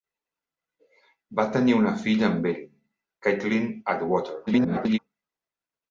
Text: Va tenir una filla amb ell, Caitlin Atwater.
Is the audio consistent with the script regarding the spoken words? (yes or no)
no